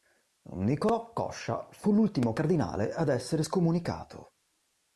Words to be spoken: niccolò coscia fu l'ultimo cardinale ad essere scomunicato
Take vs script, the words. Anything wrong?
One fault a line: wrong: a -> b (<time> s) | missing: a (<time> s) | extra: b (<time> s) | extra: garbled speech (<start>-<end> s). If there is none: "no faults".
no faults